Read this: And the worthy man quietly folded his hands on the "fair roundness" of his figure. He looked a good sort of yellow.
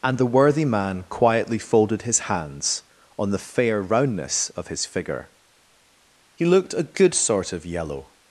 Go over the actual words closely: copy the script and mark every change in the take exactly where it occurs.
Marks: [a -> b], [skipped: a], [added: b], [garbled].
And the worthy man quietly folded his hands on the "fair roundness" of his figure. He looked a good sort of yellow.